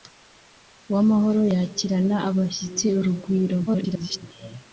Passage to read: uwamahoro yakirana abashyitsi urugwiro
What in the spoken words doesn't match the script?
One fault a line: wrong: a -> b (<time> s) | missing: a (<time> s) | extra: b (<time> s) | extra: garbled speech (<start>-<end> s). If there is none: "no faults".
extra: garbled speech (3.7-4.2 s)